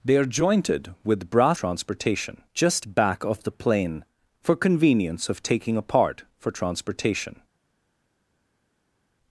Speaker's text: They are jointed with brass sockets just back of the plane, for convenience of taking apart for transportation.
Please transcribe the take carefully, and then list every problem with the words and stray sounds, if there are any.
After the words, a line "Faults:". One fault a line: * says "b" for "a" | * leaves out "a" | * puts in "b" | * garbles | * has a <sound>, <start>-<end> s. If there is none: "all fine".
They are jointed with brass transportation just back of the plane, for convenience of taking apart for transportation.
Faults:
* says "transportation" for "sockets"